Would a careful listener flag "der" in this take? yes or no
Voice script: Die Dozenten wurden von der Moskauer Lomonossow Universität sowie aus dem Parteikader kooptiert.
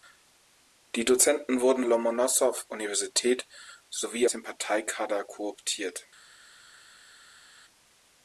yes